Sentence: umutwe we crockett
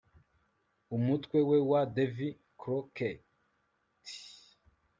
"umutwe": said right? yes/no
yes